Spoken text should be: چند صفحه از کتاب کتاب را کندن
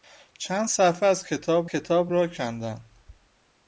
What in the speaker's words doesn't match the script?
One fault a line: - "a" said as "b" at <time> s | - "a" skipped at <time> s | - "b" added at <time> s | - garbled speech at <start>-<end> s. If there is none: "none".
none